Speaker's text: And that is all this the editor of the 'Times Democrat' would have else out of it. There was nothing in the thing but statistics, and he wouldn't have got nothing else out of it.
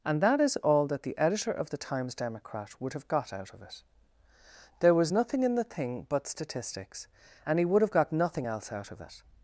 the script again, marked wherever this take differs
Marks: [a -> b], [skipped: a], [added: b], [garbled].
And that is all [this -> that] the editor of the 'Times Democrat' would have [else -> got] out of it. There was nothing in the thing but statistics, and he [wouldn't -> would] have got nothing else out of it.